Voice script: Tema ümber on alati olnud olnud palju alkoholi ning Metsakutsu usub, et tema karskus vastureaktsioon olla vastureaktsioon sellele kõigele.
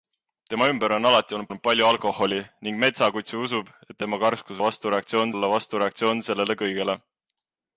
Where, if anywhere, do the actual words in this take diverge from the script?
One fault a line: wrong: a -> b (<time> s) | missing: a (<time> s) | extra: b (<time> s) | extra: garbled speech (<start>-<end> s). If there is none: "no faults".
no faults